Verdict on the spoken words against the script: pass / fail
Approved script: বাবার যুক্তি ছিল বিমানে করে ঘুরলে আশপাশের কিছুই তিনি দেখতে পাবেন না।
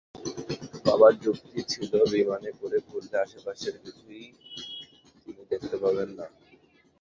pass